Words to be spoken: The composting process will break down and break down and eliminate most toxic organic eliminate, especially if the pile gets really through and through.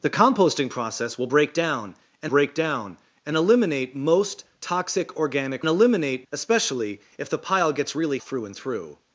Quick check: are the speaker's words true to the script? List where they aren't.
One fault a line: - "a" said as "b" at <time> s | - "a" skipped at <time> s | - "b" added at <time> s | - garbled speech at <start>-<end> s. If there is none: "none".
none